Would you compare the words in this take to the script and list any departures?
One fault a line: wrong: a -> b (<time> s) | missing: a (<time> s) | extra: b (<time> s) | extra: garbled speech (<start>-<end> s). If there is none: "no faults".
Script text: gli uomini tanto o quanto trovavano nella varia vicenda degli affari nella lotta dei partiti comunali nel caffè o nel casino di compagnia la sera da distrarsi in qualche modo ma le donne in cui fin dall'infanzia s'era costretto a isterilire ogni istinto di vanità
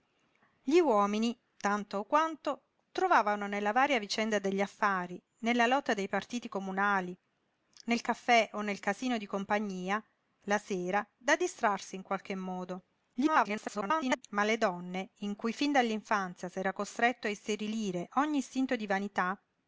extra: garbled speech (13.1-14.2 s)